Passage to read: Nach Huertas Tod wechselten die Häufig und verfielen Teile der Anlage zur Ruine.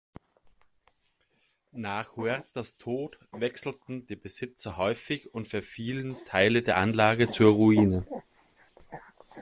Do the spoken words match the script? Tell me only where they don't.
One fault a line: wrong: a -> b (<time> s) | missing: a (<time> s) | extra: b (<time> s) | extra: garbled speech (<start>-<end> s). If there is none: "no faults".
extra: Besitzer (4.2 s)